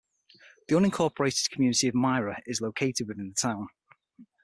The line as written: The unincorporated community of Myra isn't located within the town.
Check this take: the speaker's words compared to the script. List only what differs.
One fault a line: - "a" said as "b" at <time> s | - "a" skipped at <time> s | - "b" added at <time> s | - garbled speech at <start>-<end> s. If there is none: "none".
- "isn't" said as "is" at 2.5 s